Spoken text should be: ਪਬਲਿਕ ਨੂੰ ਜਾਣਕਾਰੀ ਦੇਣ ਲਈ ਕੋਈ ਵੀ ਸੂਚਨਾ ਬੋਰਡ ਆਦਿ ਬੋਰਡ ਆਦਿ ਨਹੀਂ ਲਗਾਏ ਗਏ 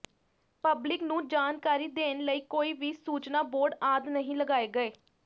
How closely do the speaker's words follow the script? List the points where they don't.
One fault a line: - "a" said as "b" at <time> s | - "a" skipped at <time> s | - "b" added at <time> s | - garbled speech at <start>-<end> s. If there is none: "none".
- "ਬੋਰਡ ਆਦਿ" skipped at 4.1 s